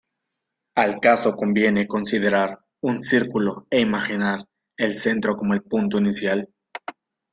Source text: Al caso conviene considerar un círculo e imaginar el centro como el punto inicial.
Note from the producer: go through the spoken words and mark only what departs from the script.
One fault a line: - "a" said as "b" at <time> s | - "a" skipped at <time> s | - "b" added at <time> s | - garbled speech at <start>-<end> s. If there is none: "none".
none